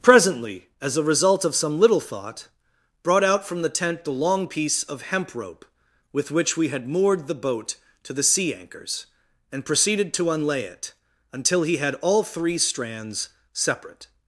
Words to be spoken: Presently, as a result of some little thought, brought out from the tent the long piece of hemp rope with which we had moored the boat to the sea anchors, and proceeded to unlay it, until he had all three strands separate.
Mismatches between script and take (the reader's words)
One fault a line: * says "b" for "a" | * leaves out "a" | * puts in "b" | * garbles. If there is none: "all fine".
all fine